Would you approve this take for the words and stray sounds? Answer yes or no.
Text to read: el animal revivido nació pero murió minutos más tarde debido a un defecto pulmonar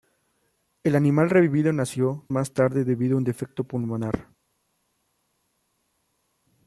no